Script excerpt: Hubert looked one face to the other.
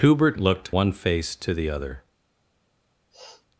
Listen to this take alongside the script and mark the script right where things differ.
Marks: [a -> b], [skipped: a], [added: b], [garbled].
Hubert looked one face to the other.